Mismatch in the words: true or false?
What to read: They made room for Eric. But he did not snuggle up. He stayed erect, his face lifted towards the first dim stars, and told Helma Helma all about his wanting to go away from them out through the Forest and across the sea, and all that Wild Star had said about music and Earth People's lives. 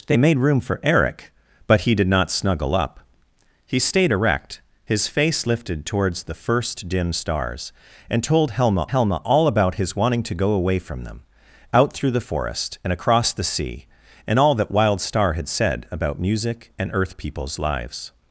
false